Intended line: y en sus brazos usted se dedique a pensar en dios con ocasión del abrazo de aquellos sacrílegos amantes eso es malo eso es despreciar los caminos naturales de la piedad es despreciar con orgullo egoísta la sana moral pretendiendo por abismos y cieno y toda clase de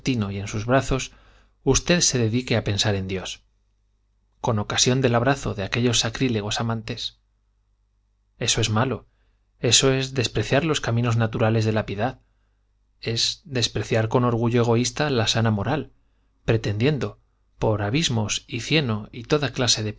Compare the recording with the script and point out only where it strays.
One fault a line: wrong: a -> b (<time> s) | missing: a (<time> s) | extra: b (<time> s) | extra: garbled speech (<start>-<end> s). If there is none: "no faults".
no faults